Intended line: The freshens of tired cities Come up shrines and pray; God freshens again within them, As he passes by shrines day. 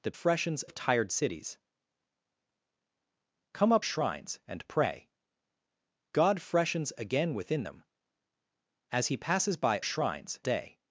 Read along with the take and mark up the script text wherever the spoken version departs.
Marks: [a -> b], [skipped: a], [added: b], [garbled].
The freshens of tired cities Come up shrines and pray; God freshens again within them, As he passes by shrines day.